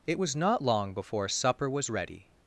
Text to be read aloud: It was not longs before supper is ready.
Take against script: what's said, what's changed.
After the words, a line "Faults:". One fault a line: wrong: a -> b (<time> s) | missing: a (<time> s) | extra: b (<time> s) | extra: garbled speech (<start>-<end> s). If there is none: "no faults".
It was not long before supper was ready.
Faults:
wrong: longs -> long (0.6 s)
wrong: is -> was (1.7 s)